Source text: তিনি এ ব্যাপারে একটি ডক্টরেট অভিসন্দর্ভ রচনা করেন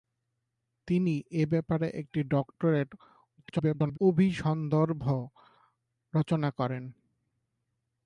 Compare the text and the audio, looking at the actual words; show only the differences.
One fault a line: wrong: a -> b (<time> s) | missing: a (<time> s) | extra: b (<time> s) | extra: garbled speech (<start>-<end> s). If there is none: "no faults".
extra: garbled speech (3.4-4.0 s)